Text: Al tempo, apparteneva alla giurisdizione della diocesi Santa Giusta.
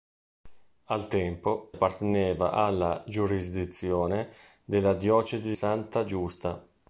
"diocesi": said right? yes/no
yes